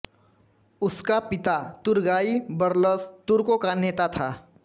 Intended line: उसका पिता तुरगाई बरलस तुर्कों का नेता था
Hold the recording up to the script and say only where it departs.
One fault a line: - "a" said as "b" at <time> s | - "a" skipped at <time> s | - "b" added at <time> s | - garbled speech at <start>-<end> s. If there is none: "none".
none